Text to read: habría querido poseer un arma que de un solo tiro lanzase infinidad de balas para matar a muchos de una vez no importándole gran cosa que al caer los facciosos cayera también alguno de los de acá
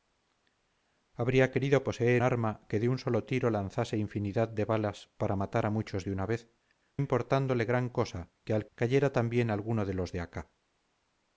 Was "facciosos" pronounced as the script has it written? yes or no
no